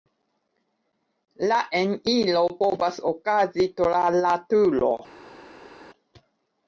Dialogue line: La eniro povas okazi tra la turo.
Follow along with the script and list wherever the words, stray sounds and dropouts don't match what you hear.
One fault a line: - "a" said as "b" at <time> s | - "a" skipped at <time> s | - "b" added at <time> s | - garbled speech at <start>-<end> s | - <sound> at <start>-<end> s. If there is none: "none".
none